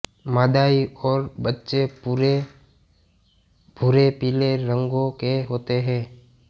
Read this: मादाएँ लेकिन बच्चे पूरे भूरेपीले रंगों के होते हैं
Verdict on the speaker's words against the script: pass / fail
fail